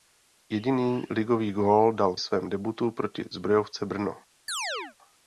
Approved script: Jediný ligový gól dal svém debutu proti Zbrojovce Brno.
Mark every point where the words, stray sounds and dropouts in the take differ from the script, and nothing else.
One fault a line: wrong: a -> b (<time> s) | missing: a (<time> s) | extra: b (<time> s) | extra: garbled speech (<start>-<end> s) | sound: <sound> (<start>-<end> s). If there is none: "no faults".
sound: chirp (4.5-5.0 s)